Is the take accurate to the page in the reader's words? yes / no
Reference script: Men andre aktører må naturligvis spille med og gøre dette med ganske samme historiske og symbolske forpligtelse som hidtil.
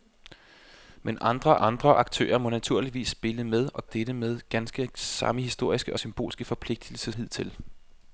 no